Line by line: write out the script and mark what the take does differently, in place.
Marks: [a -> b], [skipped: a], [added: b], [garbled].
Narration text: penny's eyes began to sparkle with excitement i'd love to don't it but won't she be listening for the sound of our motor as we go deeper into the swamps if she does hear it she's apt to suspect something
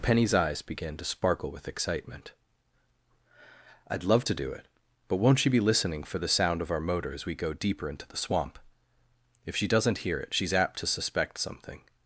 penny's eyes began to sparkle with excitement i'd love to [don't -> do] it but won't she be listening for the sound of our motor as we go deeper into the [swamps -> swamp] if she [does -> doesn't] hear it she's apt to suspect something